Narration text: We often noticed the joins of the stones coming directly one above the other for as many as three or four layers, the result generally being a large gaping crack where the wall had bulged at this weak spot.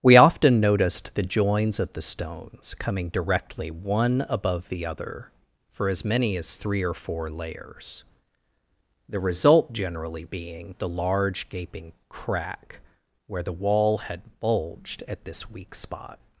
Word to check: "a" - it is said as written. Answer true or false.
false